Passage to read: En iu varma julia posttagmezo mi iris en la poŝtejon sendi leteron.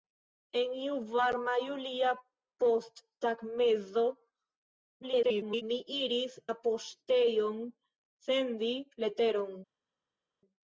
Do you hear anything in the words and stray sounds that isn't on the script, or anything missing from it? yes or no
yes